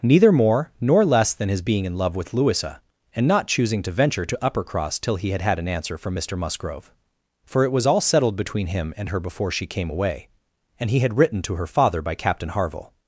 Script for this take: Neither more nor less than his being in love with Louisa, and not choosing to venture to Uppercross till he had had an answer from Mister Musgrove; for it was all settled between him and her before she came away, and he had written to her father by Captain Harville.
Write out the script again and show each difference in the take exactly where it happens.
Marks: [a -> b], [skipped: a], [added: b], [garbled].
Neither more nor less than his being in love with Louisa, and not choosing to venture to Uppercross till he had had an answer from Mister Musgrove; for it was all settled between him and her before she came away, and he had written to her father by Captain Harville.